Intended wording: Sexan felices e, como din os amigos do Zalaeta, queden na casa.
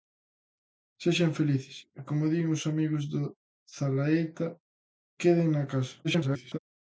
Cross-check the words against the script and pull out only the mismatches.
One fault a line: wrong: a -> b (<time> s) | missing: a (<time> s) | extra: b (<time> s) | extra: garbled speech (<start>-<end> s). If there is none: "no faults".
extra: garbled speech (6.0-6.6 s)